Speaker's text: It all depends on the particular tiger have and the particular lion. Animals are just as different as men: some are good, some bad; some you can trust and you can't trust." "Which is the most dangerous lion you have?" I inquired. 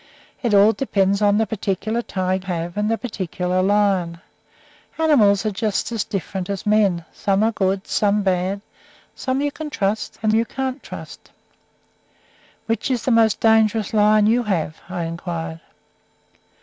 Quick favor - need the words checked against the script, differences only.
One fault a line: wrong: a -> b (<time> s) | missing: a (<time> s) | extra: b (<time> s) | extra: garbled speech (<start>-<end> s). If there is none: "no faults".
no faults